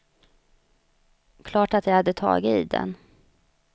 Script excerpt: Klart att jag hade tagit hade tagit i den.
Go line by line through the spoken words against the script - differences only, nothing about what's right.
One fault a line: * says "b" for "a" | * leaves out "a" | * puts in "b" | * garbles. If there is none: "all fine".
* leaves out "hade tagit"